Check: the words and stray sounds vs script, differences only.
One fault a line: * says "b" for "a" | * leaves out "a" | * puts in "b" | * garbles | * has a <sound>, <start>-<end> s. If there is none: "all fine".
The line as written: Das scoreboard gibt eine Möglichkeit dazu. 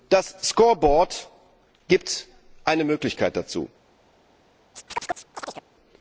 * has a chirp, 4.7-5.7 s